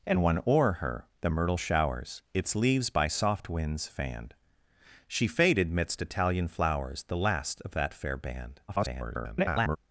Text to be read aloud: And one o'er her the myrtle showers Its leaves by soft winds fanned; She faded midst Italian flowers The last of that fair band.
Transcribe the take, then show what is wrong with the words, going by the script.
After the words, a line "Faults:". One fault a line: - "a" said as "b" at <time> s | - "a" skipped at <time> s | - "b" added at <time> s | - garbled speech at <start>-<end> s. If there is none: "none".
And one o'er her the myrtle showers Its leaves by soft winds fanned; She faded midst Italian flowers The last of that fair band. [garbled]
Faults:
- garbled speech at 8.7-9.8 s